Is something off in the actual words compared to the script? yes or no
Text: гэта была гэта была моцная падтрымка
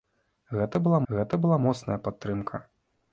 no